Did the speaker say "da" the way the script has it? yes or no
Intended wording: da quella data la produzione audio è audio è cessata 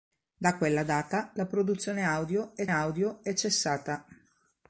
yes